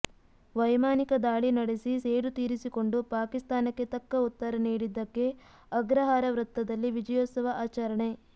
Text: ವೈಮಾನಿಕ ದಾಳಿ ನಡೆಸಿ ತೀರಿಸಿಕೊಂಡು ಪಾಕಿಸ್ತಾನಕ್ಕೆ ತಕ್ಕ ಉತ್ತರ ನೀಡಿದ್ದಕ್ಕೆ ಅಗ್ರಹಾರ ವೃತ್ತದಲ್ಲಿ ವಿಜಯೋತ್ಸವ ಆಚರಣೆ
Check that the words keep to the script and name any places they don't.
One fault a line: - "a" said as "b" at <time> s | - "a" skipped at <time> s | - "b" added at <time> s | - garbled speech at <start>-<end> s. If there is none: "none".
- "ಸೇಡು" added at 2.0 s